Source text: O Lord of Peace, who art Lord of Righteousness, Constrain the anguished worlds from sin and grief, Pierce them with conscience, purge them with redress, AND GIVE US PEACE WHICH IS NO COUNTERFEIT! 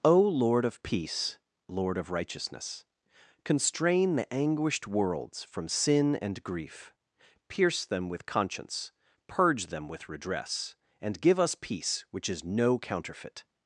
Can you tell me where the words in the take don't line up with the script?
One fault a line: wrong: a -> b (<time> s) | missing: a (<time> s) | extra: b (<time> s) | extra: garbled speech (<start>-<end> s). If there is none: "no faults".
missing: who art (1.4 s)